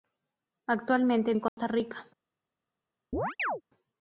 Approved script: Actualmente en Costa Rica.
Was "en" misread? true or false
false